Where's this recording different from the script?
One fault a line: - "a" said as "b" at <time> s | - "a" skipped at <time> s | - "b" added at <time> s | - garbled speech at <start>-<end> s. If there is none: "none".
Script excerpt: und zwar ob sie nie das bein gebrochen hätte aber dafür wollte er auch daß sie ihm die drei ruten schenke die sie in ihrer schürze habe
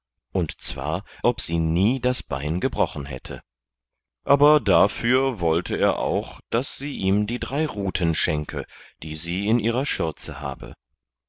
none